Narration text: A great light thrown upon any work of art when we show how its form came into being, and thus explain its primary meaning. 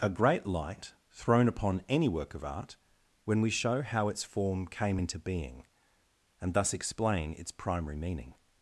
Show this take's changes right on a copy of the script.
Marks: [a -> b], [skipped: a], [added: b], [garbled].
A great light thrown upon any work of art when we show how its form came into being, and thus explain its primary meaning.